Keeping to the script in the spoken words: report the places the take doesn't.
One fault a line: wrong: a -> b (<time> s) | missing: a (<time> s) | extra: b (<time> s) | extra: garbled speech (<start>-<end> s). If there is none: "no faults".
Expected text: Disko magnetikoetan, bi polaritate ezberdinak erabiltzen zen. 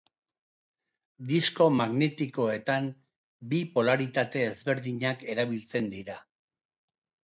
wrong: zen -> dira (6.0 s)